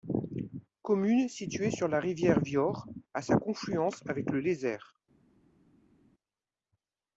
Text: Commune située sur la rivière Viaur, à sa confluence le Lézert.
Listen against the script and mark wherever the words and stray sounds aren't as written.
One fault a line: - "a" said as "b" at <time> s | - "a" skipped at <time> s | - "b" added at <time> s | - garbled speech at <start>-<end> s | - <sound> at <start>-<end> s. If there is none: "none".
- "avec" added at 4.1 s